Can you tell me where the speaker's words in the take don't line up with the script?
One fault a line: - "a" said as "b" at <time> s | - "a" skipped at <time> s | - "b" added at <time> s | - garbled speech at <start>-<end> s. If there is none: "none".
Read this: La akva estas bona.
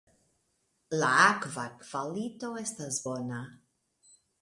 - "kvalito" added at 1.8 s